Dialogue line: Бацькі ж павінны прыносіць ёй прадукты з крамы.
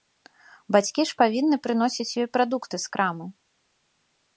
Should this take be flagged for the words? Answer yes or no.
no